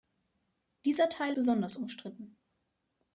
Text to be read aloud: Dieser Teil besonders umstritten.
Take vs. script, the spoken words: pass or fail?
pass